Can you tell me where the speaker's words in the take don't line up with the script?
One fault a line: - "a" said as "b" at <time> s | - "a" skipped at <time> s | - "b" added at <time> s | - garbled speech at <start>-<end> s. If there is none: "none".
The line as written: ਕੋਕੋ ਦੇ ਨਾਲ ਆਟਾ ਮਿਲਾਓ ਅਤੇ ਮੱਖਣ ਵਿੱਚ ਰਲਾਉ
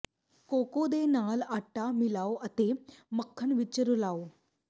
none